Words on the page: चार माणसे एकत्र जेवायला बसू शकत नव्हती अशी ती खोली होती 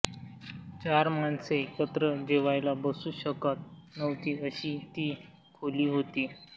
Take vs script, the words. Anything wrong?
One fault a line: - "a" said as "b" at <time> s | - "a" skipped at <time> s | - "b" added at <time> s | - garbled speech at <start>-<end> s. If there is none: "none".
none